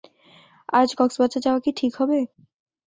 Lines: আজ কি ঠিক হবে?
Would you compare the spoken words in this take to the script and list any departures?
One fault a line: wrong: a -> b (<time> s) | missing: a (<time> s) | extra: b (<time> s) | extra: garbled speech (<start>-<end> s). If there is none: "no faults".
extra: কক্সবাজার যাওয়া (1.0 s)